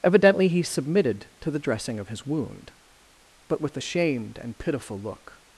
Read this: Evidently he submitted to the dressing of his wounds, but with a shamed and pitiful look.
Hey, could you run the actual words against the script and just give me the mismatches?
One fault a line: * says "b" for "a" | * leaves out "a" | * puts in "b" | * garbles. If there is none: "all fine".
* says "wound" for "wounds"